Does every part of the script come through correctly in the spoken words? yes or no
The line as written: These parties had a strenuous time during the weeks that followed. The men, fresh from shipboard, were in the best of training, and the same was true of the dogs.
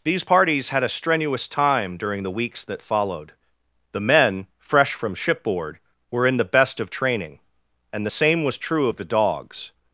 yes